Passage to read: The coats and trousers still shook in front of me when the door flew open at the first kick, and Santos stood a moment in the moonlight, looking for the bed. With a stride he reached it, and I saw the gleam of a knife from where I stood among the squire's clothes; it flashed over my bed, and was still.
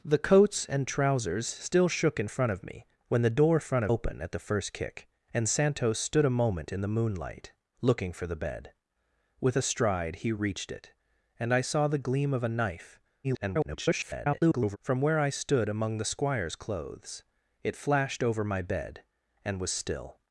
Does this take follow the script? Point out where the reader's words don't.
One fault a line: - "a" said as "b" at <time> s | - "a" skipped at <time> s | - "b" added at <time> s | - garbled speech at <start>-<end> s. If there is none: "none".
- "flew" said as "front" at 3.6 s
- garbled speech at 13.2-14.8 s